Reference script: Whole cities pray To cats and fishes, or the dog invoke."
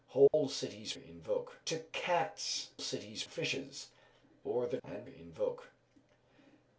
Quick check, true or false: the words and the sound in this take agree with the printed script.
false